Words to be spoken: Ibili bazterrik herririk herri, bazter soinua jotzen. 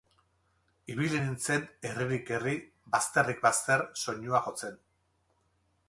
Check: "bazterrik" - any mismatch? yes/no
yes